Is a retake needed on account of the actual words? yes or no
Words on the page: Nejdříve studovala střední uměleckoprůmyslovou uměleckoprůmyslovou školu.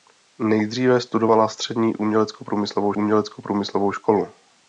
no